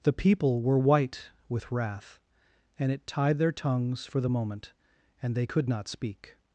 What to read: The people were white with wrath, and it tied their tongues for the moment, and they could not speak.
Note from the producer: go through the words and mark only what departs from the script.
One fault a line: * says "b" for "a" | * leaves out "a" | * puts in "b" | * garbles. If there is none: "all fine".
all fine